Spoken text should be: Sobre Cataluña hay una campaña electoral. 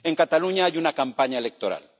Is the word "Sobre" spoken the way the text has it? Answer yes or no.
no